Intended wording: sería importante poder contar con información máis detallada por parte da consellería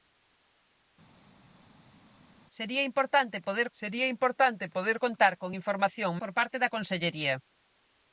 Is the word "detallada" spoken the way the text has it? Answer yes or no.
no